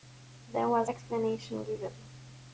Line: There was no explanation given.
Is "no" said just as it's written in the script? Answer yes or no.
no